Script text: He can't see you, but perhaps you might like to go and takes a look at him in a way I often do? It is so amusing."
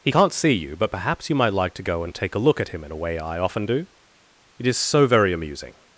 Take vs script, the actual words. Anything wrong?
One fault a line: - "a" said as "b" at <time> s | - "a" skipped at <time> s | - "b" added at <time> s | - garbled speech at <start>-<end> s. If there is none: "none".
- "takes" said as "take" at 2.1 s
- "very" added at 5.1 s